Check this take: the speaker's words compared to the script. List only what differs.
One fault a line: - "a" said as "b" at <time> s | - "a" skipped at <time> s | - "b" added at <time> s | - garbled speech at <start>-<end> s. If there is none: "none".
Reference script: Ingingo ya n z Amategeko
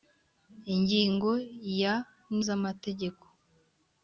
none